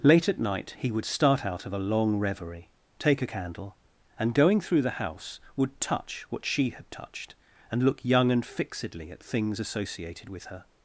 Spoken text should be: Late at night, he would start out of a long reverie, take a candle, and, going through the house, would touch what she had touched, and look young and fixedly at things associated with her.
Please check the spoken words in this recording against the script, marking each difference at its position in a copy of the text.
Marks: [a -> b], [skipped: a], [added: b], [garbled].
Late at night, he would start out of a long reverie, take a candle, and, going through the house, would touch what she had touched, and look young and fixedly at things associated with her.